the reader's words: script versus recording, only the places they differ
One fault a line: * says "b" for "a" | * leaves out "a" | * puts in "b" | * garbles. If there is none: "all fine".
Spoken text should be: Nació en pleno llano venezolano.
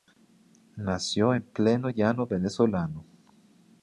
all fine